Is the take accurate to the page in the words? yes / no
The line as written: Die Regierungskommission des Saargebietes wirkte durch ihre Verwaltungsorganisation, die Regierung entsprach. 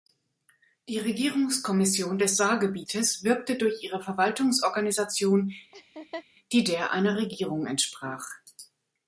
no